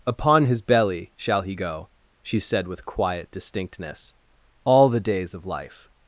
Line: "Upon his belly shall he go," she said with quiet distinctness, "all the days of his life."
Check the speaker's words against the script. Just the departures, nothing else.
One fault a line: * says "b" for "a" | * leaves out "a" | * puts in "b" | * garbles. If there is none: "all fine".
* leaves out "his"